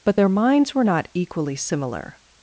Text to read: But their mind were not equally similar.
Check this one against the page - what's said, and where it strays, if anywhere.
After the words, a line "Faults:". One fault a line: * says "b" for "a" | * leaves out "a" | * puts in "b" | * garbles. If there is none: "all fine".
But their minds were not equally similar.
Faults:
* says "minds" for "mind"